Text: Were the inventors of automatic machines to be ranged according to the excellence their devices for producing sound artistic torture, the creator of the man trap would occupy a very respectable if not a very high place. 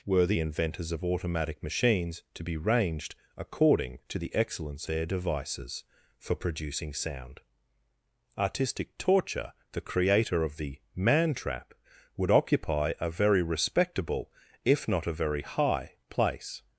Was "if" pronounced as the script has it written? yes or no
yes